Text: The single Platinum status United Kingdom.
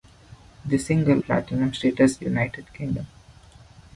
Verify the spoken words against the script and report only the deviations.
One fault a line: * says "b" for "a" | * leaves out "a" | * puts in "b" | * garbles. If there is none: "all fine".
all fine